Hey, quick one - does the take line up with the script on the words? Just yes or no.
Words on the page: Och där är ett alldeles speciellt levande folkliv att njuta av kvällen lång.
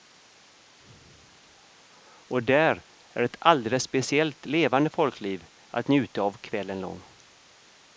yes